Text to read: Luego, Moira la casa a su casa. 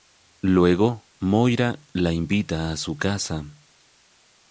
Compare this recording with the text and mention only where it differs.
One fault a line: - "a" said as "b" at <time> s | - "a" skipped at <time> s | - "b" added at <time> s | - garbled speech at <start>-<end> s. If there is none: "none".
- "casa" said as "invita" at 2.1 s